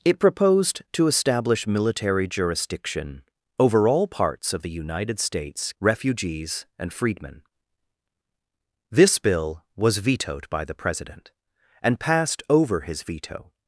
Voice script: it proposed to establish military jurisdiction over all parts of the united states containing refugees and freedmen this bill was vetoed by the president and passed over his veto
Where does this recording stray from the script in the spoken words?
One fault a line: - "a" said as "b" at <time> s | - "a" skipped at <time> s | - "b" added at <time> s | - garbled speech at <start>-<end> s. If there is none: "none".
- "containing" skipped at 5.7 s